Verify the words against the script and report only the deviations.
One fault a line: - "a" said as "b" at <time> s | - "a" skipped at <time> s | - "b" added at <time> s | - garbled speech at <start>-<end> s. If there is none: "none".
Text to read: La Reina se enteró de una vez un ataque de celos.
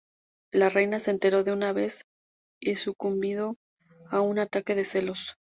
- "y sucumbido a" added at 2.6 s